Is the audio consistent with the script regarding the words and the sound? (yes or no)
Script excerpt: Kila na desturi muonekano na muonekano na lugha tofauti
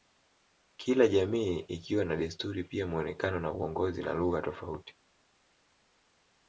no